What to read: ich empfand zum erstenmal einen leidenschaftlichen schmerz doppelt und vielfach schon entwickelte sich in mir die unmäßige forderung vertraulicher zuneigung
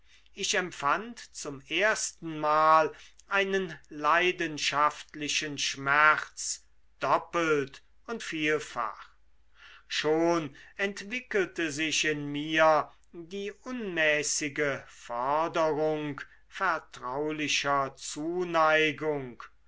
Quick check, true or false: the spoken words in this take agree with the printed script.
true